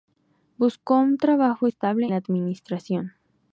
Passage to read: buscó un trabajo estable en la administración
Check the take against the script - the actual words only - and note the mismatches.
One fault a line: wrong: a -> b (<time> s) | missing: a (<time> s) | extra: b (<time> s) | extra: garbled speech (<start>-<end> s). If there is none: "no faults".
missing: en (2.1 s)